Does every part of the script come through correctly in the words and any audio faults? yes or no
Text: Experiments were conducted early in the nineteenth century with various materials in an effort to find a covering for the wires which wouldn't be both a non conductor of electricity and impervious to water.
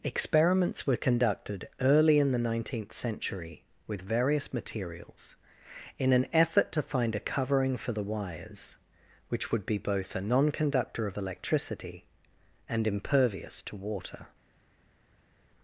no